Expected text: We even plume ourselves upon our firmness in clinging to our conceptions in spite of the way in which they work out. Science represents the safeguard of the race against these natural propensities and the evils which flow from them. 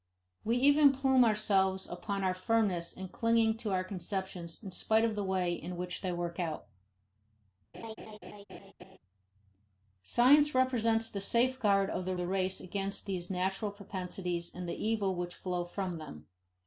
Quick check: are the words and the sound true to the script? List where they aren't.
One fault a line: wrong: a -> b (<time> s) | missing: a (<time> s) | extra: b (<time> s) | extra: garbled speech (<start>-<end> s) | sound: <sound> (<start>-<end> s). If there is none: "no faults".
sound: laugh (7.7-9.0 s)
extra: the (12.1 s)